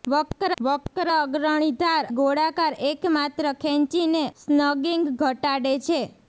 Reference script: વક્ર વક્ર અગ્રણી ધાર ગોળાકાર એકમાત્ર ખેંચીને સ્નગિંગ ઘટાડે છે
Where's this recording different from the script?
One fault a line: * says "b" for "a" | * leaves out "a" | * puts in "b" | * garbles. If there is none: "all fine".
all fine